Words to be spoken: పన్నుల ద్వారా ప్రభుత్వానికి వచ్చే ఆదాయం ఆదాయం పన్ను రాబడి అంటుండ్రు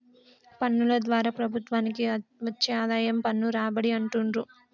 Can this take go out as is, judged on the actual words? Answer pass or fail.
fail